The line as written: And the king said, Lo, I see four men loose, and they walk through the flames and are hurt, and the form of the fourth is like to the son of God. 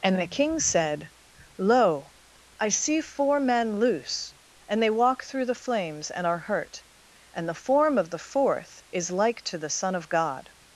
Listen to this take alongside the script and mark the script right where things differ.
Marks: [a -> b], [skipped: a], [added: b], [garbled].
And the king said, Lo, I see four men loose, and they walk through the flames and are hurt, and the form of the fourth is like to the son of God.